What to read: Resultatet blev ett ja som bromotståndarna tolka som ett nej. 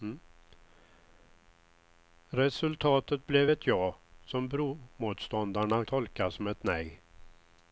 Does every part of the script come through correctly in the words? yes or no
yes